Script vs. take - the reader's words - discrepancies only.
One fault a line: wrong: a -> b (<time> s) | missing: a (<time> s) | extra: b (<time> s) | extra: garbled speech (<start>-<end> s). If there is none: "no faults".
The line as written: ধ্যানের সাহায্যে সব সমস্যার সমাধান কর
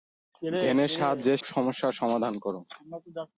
missing: সব (1.3 s)